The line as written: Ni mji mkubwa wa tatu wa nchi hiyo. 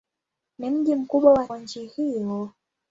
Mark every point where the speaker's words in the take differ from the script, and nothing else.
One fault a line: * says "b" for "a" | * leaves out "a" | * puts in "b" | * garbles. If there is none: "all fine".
* leaves out "tatu"